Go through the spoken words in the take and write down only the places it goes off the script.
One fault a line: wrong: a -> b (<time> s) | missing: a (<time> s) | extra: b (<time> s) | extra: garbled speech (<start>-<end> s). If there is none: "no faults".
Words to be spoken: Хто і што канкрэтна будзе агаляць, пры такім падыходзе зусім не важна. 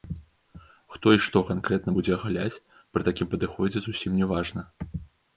no faults